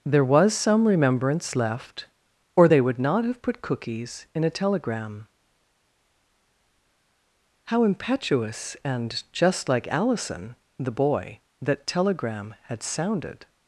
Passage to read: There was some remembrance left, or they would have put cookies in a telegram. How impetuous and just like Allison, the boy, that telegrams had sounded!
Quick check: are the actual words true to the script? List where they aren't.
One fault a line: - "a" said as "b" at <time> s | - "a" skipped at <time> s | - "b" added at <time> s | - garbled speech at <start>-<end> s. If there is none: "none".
- "not" added at 3.0 s
- "telegrams" said as "telegram" at 11.8 s